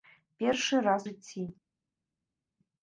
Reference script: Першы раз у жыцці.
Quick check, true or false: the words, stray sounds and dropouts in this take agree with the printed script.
false